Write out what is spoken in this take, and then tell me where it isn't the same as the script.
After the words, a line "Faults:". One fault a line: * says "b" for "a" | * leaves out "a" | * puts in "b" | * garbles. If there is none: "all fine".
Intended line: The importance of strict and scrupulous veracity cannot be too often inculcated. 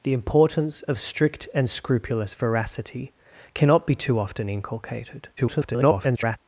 The importance of strict and scrupulous veracity cannot be too often inculcated. [garbled]
Faults:
* garbles